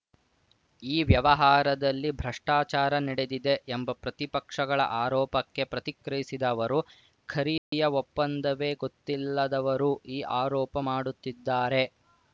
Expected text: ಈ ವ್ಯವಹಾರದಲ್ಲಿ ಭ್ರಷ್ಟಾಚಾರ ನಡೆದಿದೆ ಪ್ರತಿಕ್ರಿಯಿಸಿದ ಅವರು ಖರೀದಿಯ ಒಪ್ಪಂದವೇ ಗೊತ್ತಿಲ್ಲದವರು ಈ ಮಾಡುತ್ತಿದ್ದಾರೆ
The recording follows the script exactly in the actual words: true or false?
false